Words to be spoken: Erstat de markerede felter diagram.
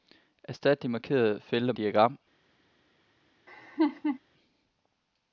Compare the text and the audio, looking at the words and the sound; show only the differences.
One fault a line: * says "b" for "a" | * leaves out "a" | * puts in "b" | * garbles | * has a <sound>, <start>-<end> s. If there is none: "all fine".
* has a laugh, 3.5-4.2 s